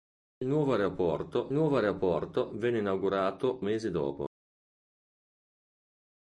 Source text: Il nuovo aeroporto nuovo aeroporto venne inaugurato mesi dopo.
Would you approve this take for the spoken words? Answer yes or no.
yes